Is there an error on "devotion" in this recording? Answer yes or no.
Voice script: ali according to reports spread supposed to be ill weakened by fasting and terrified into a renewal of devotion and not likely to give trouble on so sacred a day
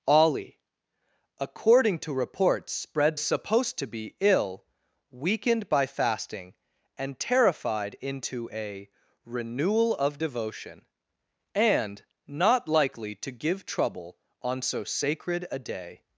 no